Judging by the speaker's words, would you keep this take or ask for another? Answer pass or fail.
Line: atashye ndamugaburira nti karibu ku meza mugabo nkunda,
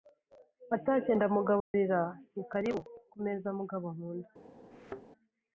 pass